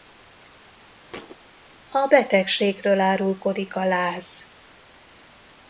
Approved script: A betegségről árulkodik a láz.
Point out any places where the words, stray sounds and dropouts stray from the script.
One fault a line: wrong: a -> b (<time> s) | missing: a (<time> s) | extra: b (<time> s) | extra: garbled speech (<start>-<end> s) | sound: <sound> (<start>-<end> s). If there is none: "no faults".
sound: thud (1.1-1.4 s)